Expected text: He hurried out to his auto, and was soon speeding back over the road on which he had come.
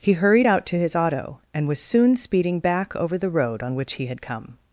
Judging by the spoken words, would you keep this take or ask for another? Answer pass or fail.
pass